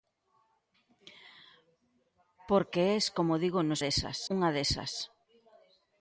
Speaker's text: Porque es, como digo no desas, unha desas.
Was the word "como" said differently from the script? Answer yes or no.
no